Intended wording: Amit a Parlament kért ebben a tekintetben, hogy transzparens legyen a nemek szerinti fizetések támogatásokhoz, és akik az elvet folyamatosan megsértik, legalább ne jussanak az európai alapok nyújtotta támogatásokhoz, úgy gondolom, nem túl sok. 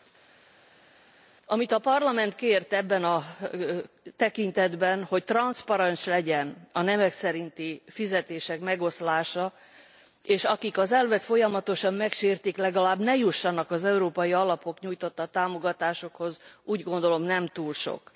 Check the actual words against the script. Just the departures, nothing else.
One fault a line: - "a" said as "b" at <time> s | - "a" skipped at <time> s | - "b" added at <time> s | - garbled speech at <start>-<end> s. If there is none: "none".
- "támogatásokhoz" said as "megoszlása" at 8.6 s